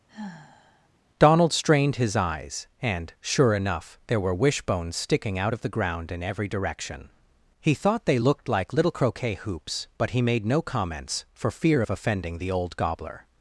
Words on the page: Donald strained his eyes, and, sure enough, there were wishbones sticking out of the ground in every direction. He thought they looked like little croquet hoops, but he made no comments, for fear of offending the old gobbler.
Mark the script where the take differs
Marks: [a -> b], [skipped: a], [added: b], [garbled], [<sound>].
[sigh] Donald strained his eyes, and, sure enough, there were wishbones sticking out of the ground in every direction. He thought they looked like little croquet hoops, but he made no comments, for fear of offending the old gobbler.